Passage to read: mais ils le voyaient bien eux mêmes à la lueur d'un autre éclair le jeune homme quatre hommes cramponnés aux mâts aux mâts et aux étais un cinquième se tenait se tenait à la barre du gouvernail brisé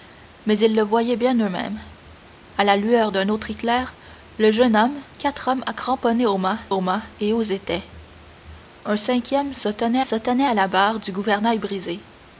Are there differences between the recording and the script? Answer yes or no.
no